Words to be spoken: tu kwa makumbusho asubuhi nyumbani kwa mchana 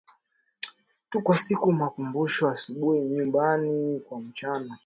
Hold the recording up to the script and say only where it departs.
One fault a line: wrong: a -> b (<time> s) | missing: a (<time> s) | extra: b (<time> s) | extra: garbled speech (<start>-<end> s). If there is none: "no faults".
extra: siku (1.4 s)